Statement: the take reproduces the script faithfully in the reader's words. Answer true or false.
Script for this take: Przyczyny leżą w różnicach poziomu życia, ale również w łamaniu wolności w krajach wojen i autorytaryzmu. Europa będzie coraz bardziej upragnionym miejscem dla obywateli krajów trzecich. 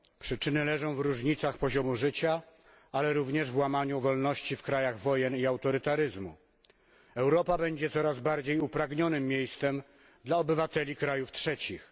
true